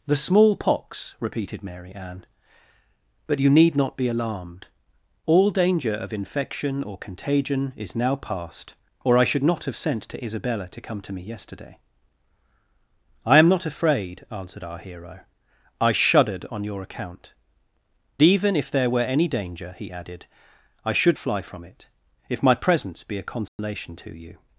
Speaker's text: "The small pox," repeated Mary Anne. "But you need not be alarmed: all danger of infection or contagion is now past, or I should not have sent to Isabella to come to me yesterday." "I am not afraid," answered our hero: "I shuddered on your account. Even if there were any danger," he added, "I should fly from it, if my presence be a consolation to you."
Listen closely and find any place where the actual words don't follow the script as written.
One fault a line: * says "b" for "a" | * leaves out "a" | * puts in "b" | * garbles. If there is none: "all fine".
all fine